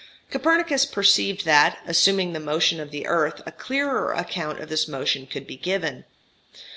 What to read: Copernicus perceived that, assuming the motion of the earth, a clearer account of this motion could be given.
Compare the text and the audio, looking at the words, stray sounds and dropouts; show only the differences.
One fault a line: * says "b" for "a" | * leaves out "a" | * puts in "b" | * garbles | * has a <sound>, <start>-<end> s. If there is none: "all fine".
all fine